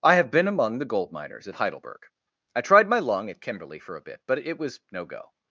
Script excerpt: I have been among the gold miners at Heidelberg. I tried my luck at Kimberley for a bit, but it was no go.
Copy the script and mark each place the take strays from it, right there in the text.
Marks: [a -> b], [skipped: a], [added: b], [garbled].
I have been among the gold miners at Heidelberg. I tried my [luck -> lung] at Kimberley for a bit, but it was no go.